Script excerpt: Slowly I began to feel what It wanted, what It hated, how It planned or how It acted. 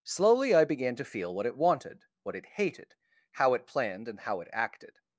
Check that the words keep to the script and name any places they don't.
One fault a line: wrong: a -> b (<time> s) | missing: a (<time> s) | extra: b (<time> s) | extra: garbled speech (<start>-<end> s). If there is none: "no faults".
wrong: or -> and (4.1 s)